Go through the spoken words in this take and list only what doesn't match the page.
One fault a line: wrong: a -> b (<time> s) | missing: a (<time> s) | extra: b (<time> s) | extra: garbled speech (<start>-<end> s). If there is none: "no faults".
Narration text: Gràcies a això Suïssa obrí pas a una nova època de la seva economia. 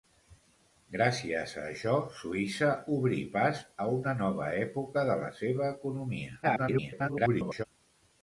extra: garbled speech (6.4-7.6 s)